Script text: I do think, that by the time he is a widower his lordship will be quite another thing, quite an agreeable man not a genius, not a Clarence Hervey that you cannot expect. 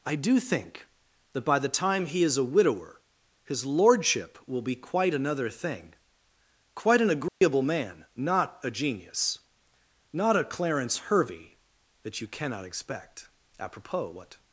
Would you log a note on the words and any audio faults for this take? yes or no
yes